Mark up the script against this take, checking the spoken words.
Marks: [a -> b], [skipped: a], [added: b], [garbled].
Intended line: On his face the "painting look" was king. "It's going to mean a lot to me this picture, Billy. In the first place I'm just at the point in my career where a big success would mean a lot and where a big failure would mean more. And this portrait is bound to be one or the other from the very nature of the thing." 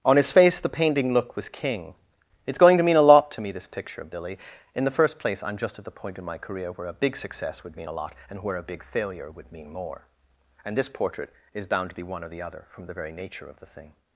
On his face the "painting look" was king. "It's going to mean a lot to me this picture, [added: of] Billy. In the first place I'm just at the point in my career where a big success would mean a lot and where a big failure would mean more. And this portrait is bound to be one or the other from the very nature of the thing."